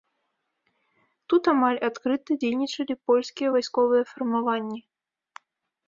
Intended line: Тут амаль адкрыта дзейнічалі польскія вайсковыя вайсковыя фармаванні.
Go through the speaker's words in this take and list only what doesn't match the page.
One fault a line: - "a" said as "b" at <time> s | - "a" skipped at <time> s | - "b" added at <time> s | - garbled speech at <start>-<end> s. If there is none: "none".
- "вайсковыя" skipped at 4.0 s